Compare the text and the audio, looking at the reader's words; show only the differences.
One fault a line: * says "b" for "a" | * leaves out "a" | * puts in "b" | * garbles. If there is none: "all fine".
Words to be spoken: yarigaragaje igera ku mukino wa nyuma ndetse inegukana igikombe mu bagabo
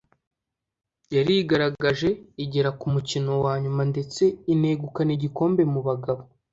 all fine